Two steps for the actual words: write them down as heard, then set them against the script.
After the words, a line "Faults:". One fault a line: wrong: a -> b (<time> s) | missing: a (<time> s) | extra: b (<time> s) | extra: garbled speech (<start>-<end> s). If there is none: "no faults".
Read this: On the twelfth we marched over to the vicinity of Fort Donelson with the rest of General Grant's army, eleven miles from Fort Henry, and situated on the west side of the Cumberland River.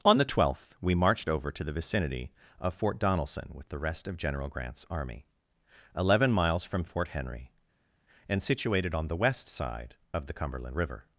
On the twelfth we marched over to the vicinity of Fort Donelson with the rest of General Grant's army, eleven miles from Fort Henry, and situated on the west side of the Cumberland River.
Faults:
no faults